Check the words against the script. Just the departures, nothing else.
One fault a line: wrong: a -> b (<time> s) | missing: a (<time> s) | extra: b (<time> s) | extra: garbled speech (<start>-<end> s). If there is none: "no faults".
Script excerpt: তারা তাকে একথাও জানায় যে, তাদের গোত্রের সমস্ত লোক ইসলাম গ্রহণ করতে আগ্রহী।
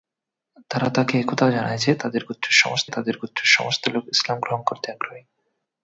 extra: তাদের গোত্রের সমস্ত (2.9 s)